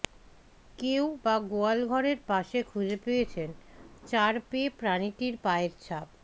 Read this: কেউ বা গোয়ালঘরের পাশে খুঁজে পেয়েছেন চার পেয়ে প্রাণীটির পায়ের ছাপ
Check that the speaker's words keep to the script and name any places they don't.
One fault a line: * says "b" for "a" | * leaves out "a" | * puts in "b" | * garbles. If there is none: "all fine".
all fine